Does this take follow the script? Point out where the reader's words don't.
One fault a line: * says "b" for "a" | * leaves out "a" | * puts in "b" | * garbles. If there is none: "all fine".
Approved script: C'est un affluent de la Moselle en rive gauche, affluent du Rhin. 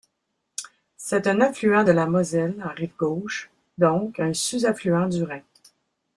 * puts in "donc un sous"